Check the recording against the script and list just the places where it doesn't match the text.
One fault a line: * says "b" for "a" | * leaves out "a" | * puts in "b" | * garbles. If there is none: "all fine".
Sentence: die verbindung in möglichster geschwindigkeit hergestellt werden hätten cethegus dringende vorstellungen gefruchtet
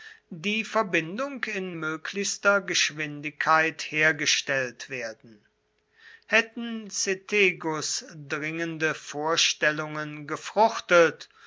all fine